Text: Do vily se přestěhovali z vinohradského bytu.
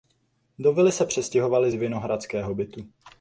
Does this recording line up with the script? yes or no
yes